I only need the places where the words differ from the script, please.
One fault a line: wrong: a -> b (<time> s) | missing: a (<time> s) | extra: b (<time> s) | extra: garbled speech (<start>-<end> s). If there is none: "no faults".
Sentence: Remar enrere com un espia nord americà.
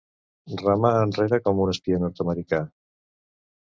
no faults